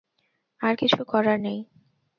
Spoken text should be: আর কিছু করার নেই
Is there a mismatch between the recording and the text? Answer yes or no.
no